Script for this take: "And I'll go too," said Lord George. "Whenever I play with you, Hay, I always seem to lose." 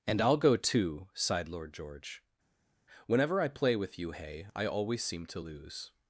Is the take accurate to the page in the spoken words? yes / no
no